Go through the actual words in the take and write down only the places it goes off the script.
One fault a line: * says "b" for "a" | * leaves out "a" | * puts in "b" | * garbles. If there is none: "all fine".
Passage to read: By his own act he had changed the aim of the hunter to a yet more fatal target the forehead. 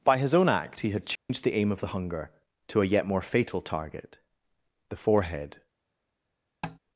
* says "hunger" for "hunter"